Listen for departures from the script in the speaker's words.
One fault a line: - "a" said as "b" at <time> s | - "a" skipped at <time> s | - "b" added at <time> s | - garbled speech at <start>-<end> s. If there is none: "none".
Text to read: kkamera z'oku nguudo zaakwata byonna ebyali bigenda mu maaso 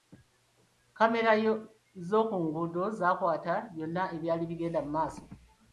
none